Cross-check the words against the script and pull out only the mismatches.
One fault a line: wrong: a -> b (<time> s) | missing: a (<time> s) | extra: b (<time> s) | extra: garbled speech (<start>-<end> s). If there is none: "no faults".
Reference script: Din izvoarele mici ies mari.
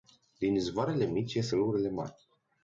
extra: râurile (1.5 s)